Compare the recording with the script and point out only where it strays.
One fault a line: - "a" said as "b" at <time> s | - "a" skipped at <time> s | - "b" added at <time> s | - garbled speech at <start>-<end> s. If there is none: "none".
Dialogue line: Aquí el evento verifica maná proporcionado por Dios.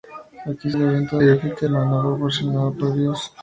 none